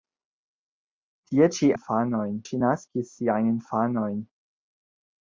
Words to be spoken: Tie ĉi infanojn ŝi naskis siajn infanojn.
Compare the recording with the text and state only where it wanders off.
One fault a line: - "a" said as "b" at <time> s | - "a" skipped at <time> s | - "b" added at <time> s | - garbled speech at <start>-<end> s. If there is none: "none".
none